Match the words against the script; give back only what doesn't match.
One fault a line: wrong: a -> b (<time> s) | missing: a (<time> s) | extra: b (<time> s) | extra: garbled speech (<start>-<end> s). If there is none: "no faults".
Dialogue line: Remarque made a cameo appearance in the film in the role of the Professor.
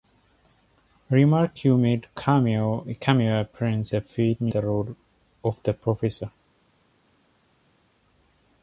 missing: in (3.9 s)
missing: in (4.5 s)